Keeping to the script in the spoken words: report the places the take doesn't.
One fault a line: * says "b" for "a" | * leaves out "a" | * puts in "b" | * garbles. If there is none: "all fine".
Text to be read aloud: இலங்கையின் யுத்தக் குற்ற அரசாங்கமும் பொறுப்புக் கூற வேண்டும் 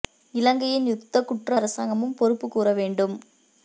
all fine